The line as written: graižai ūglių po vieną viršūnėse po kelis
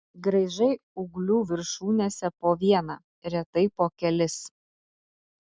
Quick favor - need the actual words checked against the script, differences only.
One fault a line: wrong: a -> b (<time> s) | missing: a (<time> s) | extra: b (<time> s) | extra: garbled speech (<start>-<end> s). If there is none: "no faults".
extra: viršūnėse (1.5 s)
wrong: viršūnėse -> retai (3.4 s)